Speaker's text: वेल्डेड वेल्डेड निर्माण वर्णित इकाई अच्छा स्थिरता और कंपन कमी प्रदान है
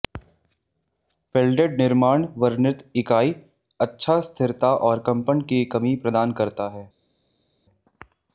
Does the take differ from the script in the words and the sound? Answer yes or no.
yes